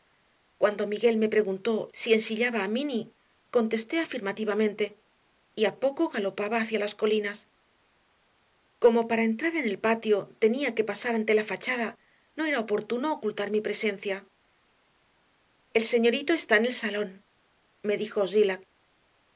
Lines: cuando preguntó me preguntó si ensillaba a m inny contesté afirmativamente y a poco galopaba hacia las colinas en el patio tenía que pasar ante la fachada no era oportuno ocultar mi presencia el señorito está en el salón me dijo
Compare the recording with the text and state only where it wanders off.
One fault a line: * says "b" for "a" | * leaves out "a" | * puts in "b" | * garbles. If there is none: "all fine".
* says "miguel" for "preguntó"
* puts in "como para entrar"